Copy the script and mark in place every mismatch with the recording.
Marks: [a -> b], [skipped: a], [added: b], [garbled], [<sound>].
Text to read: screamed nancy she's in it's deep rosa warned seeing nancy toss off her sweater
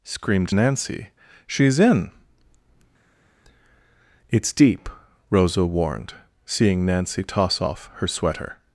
screamed nancy she's in it's deep rosa warned seeing nancy toss off her sweater